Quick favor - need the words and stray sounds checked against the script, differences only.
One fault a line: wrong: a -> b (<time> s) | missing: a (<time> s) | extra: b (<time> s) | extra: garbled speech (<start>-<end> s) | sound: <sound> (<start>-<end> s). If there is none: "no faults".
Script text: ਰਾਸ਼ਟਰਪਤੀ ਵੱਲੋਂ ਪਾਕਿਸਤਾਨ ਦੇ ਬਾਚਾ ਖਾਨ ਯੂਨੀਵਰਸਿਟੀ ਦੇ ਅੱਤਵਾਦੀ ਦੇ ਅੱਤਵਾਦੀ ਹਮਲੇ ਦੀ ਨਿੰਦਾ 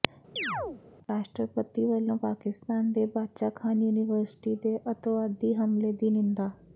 sound: chirp (0.4-0.8 s)
missing: ਦੇ ਅੱਤਵਾਦੀ (5.5 s)